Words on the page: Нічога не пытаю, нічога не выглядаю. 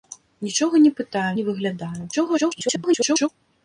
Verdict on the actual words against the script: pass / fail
fail